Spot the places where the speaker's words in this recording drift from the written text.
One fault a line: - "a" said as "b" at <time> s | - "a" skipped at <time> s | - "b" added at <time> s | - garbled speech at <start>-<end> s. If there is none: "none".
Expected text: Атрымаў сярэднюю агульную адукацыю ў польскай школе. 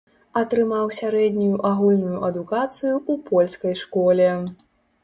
none